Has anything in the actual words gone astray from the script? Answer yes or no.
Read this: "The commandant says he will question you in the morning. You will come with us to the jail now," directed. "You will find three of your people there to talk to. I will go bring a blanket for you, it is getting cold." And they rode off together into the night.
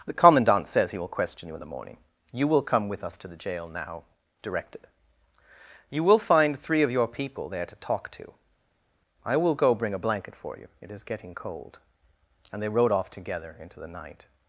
no